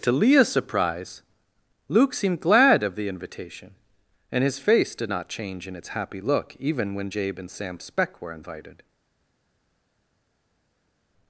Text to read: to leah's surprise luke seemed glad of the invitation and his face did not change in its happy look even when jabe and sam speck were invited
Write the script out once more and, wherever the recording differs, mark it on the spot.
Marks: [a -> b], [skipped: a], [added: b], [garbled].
to leah's surprise luke seemed glad of the invitation and his face did not change in its happy look even when jabe and sam speck were invited